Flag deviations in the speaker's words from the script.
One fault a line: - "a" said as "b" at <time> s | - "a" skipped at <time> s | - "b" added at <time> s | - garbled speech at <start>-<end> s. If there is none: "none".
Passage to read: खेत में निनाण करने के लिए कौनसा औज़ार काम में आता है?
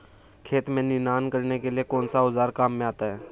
none